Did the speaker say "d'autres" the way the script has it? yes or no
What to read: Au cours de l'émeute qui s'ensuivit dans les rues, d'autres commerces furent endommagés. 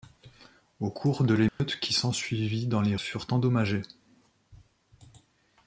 no